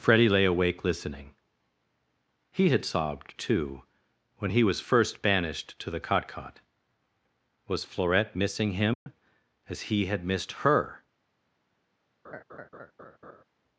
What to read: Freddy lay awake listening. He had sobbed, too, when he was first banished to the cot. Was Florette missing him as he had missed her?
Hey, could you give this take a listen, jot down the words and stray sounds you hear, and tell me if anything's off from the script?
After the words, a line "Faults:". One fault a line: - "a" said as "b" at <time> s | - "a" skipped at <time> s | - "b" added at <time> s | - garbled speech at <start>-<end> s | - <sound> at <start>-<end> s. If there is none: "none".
Freddy lay awake listening. He had sobbed, too, when he was first banished to the cot cot. Was Florette missing him as he had missed her?
Faults:
- "cot" added at 6.3 s
- dropout at 8.9-9.1 s
- laugh at 12.2-13.4 s